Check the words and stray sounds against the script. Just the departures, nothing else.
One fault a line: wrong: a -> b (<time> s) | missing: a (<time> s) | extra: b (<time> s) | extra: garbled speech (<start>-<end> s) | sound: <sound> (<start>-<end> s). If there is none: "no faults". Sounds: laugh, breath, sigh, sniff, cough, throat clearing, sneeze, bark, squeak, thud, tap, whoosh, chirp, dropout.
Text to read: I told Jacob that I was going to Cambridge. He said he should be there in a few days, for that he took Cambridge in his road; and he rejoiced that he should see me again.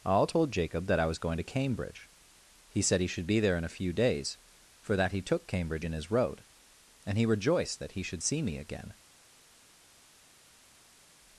wrong: I -> all (0.1 s)